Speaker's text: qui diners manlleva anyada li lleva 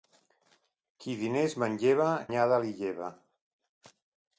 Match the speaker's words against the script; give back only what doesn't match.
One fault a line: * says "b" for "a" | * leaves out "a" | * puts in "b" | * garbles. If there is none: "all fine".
all fine